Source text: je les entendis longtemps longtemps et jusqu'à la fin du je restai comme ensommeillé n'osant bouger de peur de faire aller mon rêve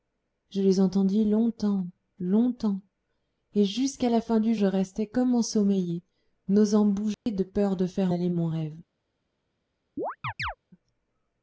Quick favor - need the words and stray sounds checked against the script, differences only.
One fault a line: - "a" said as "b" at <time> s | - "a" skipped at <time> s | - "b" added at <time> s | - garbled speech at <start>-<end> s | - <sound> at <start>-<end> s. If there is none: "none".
- dropout at 7.1-7.3 s
- chirp at 10.0-10.6 s